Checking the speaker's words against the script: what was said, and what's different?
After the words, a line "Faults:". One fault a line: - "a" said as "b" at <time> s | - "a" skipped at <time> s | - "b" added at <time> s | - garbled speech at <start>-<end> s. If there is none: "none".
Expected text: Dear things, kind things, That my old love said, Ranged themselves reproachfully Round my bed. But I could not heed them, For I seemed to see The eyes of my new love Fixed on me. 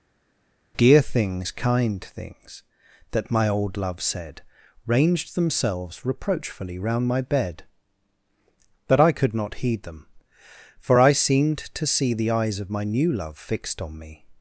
Dear things, kind things, That my old love said, Ranged themselves reproachfully Round my bed. But I could not heed them, For I seemed to see The eyes of my new love Fixed on me.
Faults:
none